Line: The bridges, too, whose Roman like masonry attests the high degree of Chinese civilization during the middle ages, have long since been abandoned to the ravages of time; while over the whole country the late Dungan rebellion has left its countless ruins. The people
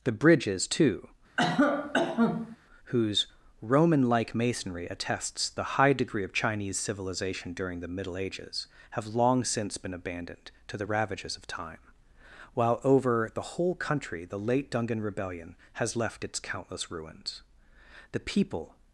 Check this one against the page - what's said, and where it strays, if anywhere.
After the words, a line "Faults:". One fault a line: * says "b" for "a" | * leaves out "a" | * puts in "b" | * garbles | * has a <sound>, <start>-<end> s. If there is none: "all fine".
The bridges, too, whose Roman like masonry attests the high degree of Chinese civilization during the middle ages, have long since been abandoned to the ravages of time; while over the whole country the late Dungan rebellion has left its countless ruins. The people
Faults:
* has a cough, 1.4-2.6 s